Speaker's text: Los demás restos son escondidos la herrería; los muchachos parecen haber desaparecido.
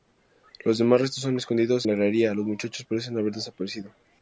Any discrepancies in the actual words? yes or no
no